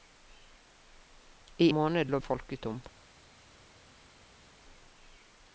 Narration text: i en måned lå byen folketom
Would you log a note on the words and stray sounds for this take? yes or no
yes